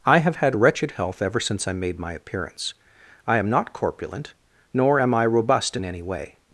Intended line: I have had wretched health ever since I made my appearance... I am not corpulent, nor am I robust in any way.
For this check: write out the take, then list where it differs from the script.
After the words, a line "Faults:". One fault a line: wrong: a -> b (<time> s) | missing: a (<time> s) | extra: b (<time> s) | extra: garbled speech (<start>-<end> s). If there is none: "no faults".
I have had wretched health ever since I made my appearance... I am not corpulent, nor am I robust in any way.
Faults:
no faults